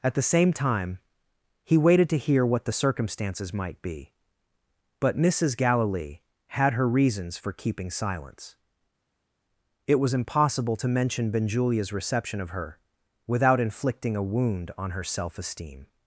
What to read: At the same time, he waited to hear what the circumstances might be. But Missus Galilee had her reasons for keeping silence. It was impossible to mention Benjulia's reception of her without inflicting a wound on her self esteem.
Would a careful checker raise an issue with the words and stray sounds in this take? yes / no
no